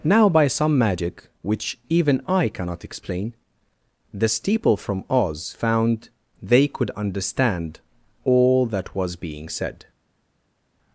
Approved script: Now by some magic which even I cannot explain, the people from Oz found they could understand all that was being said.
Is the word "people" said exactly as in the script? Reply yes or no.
no